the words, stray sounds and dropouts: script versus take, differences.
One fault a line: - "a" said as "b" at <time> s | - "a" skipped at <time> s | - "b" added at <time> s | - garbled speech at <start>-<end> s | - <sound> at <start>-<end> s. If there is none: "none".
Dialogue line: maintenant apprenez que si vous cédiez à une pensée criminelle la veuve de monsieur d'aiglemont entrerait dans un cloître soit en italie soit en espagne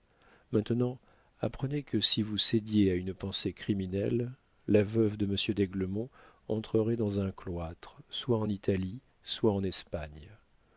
none